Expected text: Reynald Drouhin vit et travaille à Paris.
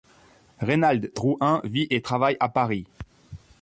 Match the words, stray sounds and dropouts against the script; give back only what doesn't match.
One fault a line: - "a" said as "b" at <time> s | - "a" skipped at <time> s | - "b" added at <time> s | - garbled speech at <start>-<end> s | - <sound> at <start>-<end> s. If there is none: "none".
none